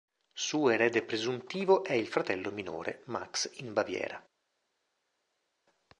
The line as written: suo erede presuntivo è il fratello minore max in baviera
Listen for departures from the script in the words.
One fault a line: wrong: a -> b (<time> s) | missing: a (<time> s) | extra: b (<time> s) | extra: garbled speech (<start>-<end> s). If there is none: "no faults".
no faults